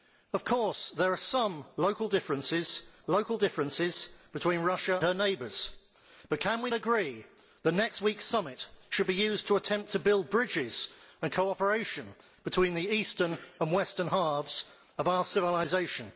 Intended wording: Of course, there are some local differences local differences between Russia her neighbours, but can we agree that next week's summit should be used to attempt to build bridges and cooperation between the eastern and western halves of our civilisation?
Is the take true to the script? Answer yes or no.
yes